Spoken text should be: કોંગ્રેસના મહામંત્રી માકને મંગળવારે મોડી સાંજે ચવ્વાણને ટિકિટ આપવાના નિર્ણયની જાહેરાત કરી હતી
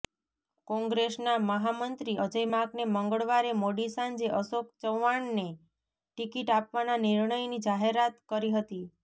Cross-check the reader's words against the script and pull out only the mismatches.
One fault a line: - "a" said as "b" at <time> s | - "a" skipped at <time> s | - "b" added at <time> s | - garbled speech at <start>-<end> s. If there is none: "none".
- "અજય" added at 2.2 s
- "અશોક" added at 4.3 s